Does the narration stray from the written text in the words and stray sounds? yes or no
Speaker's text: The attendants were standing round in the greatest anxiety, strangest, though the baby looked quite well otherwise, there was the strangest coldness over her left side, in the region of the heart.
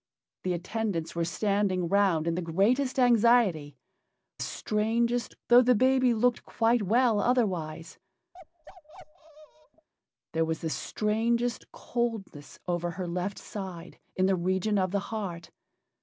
yes